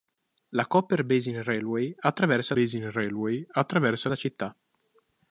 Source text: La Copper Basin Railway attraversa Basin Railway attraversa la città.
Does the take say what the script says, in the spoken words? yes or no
yes